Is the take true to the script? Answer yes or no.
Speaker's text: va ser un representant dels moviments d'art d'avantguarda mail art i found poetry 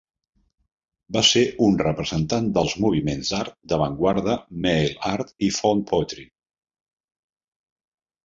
yes